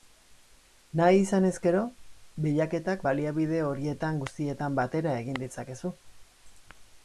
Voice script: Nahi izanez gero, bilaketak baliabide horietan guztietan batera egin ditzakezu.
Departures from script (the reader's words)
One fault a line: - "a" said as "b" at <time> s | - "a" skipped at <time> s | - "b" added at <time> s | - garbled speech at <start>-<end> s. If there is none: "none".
none